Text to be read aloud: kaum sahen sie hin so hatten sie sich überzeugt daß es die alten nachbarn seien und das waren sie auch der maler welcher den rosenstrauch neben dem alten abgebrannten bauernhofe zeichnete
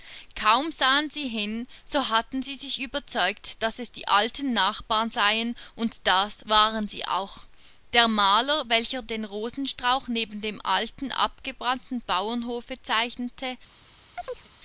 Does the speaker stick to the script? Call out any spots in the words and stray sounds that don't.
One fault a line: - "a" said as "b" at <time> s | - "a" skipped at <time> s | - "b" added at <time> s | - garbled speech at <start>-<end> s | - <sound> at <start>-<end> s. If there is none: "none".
- chirp at 14.2-14.5 s